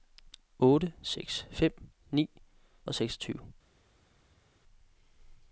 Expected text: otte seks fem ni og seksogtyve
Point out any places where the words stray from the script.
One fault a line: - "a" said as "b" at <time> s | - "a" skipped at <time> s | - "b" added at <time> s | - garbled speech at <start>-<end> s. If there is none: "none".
none